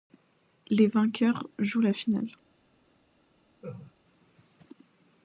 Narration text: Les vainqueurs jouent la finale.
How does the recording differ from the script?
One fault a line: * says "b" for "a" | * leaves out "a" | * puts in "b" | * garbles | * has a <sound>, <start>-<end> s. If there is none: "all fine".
* has a laugh, 3.6-3.9 s